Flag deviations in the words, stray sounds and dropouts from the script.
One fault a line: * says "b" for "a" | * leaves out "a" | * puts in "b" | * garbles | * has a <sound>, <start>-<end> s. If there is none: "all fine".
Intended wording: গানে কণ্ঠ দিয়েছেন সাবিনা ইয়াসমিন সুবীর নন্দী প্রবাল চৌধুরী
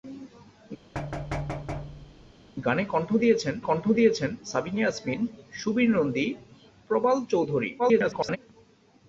* has a thud, 0.9-2.3 s
* puts in "কণ্ঠ দিয়েছেন"
* garbles